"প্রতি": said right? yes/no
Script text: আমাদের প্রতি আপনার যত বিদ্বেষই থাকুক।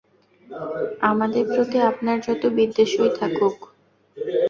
yes